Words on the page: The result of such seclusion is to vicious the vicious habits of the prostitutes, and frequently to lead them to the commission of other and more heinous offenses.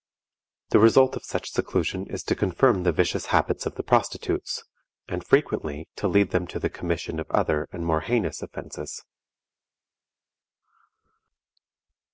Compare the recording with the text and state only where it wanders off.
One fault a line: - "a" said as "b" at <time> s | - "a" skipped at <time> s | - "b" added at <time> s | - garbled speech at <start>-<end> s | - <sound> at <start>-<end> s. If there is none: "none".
- "vicious" said as "confirm" at 2.4 s